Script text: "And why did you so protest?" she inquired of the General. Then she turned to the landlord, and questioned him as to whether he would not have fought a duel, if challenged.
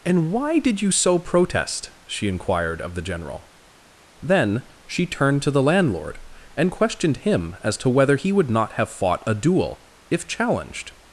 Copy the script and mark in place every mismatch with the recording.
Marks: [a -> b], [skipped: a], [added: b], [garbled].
"And why did you so protest?" she inquired of the General. Then she turned to the landlord, and questioned him as to whether he would not have fought a duel, if challenged.